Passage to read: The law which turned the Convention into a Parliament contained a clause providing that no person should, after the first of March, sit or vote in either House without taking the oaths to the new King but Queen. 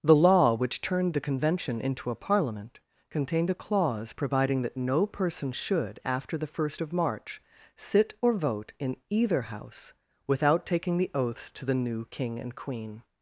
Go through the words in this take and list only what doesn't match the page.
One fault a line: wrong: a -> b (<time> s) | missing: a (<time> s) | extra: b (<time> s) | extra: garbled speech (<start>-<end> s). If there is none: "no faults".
wrong: but -> and (12.4 s)